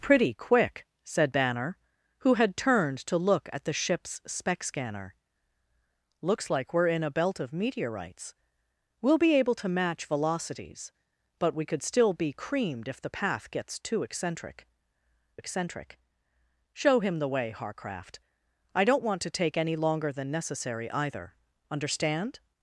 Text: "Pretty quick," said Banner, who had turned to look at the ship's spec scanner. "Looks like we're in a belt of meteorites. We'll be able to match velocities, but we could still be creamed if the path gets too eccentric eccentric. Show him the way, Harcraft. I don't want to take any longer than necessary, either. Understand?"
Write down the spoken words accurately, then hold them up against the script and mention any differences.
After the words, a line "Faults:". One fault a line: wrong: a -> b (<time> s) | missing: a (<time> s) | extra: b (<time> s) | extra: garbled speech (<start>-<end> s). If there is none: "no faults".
"Pretty quick," said Banner, who had turned to look at the ship's spec scanner. "Looks like we're in a belt of meteorites. We'll be able to match velocities, but we could still be creamed if the path gets too eccentric eccentric. Show him the way, Harcraft. I don't want to take any longer than necessary, either. Understand?"
Faults:
no faults